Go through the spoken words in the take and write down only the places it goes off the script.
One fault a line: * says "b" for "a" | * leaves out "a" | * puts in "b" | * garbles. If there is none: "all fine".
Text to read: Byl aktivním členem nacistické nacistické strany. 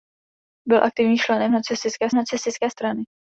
all fine